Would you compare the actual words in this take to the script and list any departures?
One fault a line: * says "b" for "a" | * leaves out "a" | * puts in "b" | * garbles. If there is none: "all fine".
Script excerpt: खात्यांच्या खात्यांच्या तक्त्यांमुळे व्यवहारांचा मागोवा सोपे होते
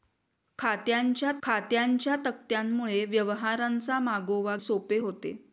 all fine